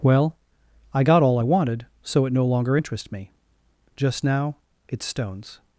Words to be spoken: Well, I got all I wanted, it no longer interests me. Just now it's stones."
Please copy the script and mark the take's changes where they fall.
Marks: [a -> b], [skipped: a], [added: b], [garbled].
Well, I got all I wanted, [added: so] it no longer interests me. Just now it's stones."